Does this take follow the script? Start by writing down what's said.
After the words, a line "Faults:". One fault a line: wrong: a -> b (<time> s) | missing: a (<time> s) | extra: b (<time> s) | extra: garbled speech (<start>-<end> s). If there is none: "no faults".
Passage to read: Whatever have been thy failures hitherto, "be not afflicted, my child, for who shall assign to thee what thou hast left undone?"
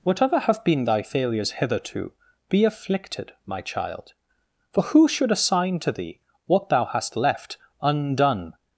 Whatever have been thy failures hitherto, "be afflicted, my child, for who should assign to thee what thou hast left undone?"
Faults:
missing: not (2.6 s)
wrong: shall -> should (5.1 s)